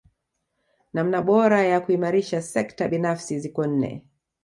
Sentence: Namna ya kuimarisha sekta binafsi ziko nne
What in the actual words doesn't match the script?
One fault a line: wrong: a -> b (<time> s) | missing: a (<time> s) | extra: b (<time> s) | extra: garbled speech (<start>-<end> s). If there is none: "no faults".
extra: bora (1.2 s)